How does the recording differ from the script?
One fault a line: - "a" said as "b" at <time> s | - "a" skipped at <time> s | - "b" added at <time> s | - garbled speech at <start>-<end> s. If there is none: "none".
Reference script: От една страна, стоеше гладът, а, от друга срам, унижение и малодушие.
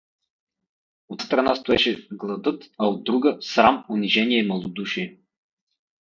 - "една" skipped at 1.2 s